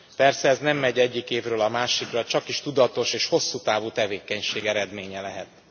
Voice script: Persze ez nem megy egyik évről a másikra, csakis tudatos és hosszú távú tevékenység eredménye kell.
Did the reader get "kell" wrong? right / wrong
wrong